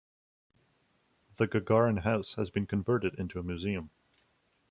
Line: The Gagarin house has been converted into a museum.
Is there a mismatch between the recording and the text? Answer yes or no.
no